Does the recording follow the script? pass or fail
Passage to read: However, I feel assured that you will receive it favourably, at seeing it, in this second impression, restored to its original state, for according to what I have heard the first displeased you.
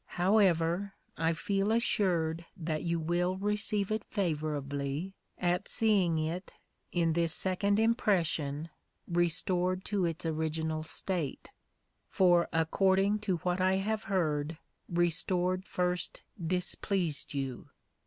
fail